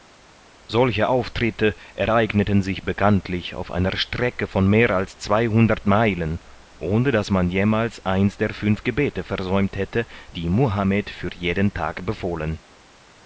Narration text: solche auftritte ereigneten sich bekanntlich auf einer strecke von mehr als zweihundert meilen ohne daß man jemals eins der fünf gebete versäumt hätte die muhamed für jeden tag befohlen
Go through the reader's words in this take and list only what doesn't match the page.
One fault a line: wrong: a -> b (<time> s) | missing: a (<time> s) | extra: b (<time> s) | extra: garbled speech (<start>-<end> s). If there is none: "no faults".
no faults